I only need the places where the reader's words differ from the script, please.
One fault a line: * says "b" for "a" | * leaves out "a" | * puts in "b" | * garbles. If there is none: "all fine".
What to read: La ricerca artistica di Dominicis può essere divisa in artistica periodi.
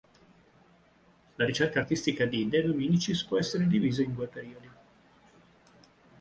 * puts in "De"
* says "due" for "artistica"